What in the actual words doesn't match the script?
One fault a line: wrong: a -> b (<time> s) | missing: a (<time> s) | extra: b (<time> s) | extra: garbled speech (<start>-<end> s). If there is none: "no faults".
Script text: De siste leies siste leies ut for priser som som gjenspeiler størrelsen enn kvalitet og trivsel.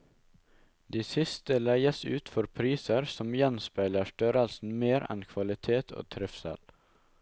missing: siste leies (2.0 s)
missing: som (3.3 s)
extra: mer (4.8 s)